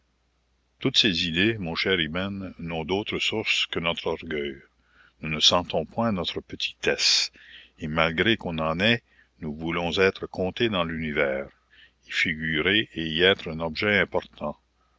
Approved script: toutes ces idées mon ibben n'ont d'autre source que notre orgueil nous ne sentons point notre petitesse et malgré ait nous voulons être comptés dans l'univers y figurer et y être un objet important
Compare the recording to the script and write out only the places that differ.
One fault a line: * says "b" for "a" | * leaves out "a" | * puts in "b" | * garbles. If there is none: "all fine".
* puts in "cher"
* puts in "qu'on en"